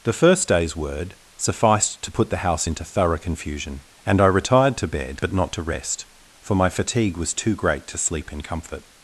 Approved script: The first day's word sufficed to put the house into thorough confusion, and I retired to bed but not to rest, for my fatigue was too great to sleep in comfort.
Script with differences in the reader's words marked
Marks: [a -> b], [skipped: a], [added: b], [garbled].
The first day's word sufficed to put the house into thorough confusion, and I retired to bed but not to rest, for my fatigue was too great to sleep in comfort.